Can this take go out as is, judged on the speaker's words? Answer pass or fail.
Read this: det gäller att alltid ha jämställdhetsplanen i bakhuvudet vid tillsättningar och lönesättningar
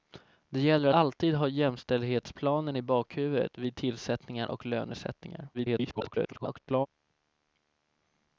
fail